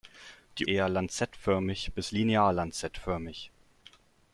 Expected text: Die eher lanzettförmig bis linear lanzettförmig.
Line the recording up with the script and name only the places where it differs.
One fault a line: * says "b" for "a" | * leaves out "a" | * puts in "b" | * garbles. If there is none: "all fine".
all fine